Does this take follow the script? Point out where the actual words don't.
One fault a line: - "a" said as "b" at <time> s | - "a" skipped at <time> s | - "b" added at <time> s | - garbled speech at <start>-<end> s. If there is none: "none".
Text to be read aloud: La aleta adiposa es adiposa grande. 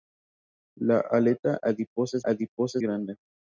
none